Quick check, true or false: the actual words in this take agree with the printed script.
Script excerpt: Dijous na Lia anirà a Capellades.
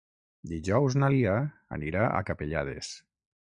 true